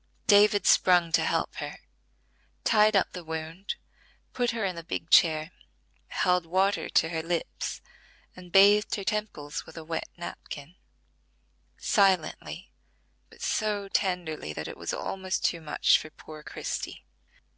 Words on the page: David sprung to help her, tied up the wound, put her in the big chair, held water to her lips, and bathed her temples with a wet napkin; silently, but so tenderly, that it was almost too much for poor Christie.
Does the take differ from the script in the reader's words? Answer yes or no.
no